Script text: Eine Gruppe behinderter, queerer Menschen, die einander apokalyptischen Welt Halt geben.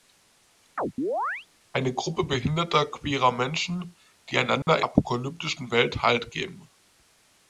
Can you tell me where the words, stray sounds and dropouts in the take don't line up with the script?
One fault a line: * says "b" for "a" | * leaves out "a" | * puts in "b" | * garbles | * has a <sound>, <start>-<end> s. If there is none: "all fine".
* has a chirp, 0.8-1.5 s
* has a dropout, 4.6-4.7 s